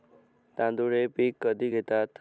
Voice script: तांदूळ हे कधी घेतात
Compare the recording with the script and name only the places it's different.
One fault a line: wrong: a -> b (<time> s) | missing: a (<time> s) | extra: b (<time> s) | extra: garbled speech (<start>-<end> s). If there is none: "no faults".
extra: पीक (1.1 s)